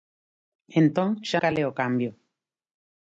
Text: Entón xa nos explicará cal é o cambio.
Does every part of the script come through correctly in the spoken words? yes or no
no